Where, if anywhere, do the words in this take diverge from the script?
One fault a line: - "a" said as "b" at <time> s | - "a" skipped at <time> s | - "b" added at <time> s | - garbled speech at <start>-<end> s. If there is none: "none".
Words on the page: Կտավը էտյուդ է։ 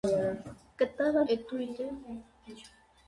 none